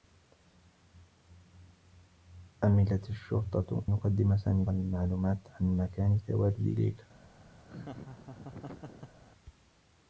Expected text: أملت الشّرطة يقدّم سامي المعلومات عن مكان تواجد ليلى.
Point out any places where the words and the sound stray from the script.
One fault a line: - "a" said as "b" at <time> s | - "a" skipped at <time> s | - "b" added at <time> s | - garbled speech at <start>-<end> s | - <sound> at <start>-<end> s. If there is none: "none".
- laugh at 7.6-9.2 s